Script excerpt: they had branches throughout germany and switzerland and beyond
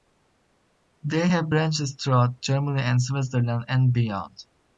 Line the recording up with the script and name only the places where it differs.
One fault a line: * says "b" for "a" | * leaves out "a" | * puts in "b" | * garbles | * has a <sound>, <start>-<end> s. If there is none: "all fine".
* says "have" for "had"